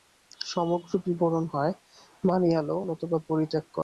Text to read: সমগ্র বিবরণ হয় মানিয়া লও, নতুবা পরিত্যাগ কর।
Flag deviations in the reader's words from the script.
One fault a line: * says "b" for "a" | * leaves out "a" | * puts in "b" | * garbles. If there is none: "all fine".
all fine